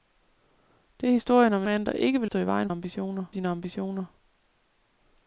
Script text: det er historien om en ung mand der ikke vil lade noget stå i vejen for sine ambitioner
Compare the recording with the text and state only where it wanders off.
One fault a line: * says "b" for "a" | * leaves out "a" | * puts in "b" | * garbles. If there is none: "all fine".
* leaves out "ung"
* leaves out "lade noget"
* says "ambitioner" for "for"